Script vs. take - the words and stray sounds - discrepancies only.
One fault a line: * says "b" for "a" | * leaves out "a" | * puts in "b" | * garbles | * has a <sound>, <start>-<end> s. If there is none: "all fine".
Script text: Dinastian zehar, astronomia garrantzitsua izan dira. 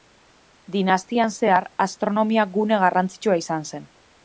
* puts in "gune"
* says "zen" for "dira"